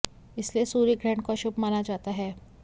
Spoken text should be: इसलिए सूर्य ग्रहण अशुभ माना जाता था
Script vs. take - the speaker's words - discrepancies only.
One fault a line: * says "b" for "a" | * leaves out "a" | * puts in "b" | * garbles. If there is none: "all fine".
* puts in "को"
* says "है" for "था"